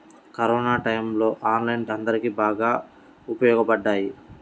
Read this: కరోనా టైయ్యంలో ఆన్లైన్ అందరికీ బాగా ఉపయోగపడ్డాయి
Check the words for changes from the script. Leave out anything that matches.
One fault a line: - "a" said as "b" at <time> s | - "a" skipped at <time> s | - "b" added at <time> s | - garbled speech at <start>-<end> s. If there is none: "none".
none